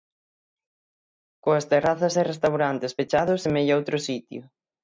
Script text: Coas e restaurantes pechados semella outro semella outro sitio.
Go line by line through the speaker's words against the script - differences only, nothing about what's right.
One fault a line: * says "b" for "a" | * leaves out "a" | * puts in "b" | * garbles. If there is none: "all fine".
* puts in "terrazas"
* leaves out "semella outro"